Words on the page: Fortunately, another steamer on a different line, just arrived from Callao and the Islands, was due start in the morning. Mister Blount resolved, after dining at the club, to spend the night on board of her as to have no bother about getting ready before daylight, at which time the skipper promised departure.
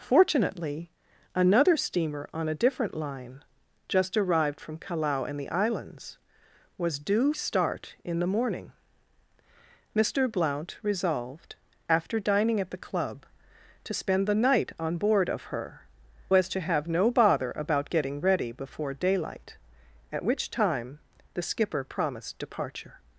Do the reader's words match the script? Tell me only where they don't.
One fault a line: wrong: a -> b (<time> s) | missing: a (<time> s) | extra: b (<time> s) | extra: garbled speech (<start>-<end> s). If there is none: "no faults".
no faults